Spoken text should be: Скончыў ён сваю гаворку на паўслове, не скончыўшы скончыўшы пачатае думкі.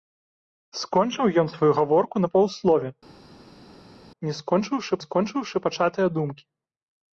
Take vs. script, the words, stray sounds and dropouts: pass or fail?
pass